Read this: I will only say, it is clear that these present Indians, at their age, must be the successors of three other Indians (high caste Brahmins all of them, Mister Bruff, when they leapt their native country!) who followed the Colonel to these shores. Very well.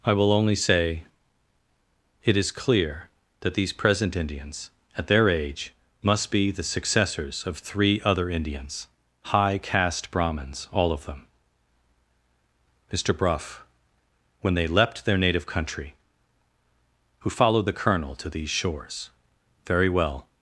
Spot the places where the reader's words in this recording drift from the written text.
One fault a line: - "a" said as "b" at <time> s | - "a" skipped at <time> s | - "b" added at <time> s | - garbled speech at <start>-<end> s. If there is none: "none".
none